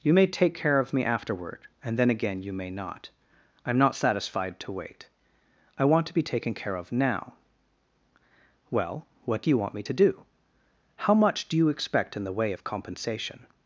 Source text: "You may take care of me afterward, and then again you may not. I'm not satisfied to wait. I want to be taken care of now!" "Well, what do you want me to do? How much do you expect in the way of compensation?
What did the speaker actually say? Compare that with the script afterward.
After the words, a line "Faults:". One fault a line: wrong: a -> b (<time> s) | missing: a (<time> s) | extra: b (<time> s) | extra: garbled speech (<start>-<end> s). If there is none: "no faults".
"You may take care of me afterward, and then again you may not. I'm not satisfied to wait. I want to be taken care of now!" "Well, what do you want me to do? How much do you expect in the way of compensation?
Faults:
no faults